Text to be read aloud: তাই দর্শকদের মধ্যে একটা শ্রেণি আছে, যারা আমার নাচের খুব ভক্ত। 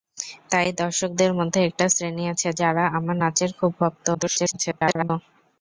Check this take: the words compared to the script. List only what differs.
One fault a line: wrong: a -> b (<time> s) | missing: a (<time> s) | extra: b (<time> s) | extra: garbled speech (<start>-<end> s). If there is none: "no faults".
extra: garbled speech (4.1-5.1 s)